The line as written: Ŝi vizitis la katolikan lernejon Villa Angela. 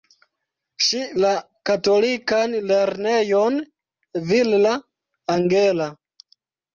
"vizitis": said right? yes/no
no